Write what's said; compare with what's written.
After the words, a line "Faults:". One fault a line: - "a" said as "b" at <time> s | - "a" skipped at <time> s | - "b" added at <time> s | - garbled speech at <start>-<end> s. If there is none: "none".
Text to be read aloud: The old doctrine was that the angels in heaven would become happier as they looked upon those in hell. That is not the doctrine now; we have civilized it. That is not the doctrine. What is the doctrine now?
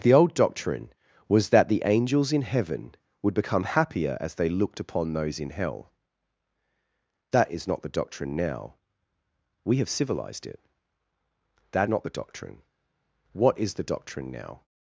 The old doctrine was that the angels in heaven would become happier as they looked upon those in hell. That is not the doctrine now; we have civilized it. That not the doctrine. What is the doctrine now?
Faults:
- "is" skipped at 11.9 s